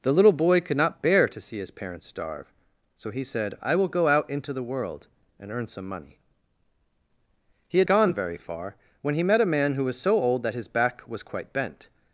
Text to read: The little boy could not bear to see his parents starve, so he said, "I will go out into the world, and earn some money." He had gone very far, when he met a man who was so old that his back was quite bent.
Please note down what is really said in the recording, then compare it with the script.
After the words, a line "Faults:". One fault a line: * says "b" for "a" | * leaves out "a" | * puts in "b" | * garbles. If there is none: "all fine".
The little boy could not bear to see his parents starve, so he said, "I will go out into the world, and earn some money." He had gone very far, when he met a man who was so old that his back was quite bent.
Faults:
all fine